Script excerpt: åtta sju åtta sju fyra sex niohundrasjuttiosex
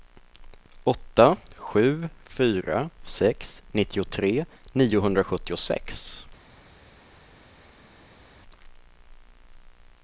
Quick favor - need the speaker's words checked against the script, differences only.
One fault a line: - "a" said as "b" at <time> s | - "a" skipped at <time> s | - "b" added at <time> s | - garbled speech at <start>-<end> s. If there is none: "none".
- "åtta sju" skipped at 2.1 s
- "nittiotre" added at 3.7 s